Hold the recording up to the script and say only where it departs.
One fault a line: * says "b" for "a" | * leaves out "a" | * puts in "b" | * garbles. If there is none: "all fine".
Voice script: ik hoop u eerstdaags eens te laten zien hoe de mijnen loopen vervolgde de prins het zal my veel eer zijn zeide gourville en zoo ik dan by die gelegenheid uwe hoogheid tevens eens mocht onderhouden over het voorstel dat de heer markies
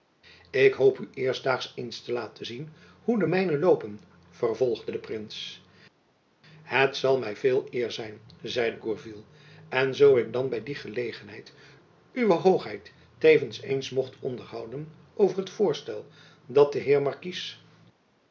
all fine